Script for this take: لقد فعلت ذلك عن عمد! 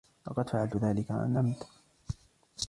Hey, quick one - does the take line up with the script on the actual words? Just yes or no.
yes